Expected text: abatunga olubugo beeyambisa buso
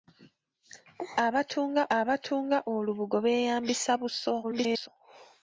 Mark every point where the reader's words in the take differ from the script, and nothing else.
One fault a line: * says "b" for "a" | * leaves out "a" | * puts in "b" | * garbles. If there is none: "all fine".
* puts in "abatunga"
* garbles